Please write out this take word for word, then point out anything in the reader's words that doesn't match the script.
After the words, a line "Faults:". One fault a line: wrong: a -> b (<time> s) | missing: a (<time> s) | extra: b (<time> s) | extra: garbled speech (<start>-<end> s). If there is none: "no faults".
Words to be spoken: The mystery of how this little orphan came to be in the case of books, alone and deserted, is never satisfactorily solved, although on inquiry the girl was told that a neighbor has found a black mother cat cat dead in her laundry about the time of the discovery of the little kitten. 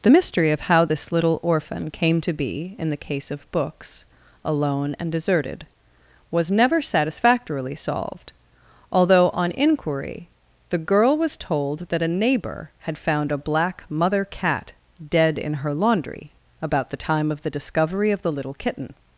The mystery of how this little orphan came to be in the case of books, alone and deserted, was never satisfactorily solved, although on inquiry the girl was told that a neighbor had found a black mother cat dead in her laundry about the time of the discovery of the little kitten.
Faults:
wrong: is -> was (6.3 s)
wrong: has -> had (12.8 s)
missing: cat (14.7 s)